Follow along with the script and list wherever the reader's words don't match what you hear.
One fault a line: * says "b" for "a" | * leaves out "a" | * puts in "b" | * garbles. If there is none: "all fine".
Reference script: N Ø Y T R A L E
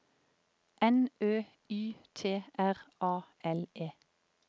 all fine